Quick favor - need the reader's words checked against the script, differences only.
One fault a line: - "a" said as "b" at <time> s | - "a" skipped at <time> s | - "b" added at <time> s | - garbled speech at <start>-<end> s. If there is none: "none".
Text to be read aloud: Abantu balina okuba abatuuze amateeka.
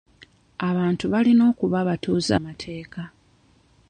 none